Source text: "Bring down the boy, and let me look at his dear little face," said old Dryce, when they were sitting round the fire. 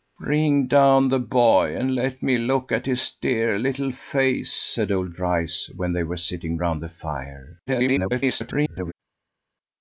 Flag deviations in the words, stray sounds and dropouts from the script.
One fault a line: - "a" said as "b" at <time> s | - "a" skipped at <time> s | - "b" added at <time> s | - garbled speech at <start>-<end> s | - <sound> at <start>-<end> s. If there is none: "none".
- garbled speech at 7.7-8.9 s